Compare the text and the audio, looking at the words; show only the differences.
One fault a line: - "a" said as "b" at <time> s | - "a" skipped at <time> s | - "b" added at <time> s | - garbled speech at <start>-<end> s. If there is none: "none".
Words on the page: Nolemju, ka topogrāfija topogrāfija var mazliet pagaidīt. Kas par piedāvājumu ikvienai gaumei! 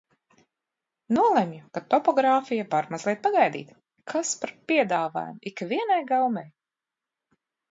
- "topogrāfija" skipped at 2.6 s